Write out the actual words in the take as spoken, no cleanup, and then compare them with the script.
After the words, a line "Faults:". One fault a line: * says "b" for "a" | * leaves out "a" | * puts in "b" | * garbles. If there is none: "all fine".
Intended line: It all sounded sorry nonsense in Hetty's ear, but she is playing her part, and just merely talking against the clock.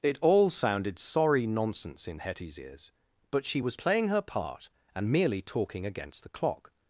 It all sounded sorry nonsense in Hetty's ears, but she was playing her part, and merely talking against the clock.
Faults:
* says "ears" for "ear"
* says "was" for "is"
* leaves out "just"